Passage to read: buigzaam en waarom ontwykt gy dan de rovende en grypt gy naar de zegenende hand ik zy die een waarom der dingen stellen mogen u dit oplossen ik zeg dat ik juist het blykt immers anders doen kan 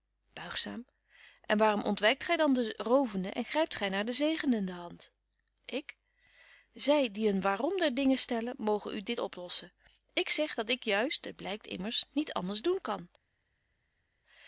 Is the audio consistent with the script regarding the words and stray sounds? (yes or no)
no